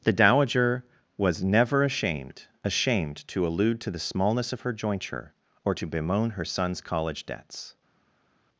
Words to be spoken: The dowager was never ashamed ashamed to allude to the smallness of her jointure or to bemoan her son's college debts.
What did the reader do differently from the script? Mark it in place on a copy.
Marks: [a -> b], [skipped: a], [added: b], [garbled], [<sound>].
The dowager was never ashamed ashamed to allude to the smallness of her jointure or to bemoan her son's college debts.